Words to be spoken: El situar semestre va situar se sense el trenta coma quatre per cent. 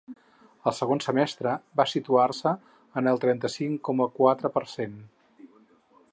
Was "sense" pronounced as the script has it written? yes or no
no